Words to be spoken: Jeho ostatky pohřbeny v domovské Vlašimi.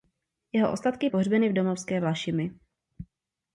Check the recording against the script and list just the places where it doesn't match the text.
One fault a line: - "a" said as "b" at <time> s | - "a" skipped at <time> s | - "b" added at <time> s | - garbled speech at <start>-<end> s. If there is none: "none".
none